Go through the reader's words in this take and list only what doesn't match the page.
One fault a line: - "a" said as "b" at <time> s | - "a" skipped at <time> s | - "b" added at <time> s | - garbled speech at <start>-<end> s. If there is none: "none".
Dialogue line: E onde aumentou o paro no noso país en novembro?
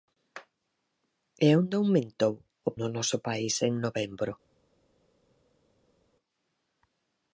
- "paro" skipped at 2.7 s